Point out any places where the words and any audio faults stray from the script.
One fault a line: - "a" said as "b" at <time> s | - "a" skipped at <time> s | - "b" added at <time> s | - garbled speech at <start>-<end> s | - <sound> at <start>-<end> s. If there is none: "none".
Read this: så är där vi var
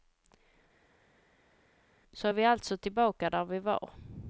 - "vi alltså tillbaka" added at 2.3 s